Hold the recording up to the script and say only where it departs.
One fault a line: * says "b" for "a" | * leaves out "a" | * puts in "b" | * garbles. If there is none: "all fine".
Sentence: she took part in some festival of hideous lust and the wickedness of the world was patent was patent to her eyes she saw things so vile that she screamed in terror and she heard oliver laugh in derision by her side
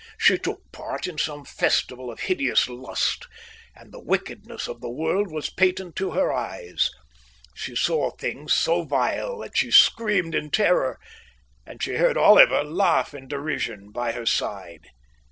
* leaves out "was patent"